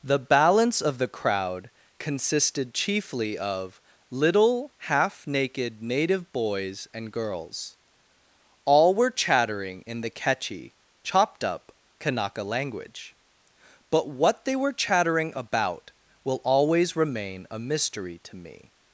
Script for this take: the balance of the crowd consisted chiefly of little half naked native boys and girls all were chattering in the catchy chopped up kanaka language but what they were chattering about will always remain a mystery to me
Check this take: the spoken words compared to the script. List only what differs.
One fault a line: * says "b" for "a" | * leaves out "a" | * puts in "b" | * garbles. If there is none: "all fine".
all fine